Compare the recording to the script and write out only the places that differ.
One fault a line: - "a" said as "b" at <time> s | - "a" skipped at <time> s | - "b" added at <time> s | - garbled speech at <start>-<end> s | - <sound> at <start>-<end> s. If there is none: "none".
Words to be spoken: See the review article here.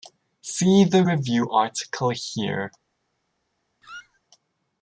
- squeak at 3.8-4.2 s